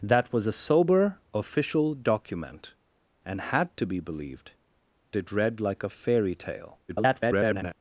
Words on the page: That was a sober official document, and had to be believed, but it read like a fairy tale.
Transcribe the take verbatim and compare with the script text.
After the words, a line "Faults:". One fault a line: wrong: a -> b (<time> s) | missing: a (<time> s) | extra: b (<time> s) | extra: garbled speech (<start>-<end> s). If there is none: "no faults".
That was a sober official document, and had to be believed, it read like a fairy tale. [garbled]
Faults:
missing: but (4.5 s)
extra: garbled speech (6.9-7.8 s)